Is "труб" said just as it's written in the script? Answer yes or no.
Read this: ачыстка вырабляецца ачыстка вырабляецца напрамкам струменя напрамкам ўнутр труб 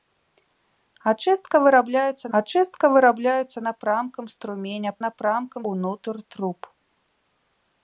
yes